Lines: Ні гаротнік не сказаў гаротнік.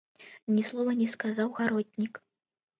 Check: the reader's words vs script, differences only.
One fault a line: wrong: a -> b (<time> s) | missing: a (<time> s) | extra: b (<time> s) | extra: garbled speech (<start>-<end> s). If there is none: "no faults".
wrong: гаротнік -> слова (0.7 s)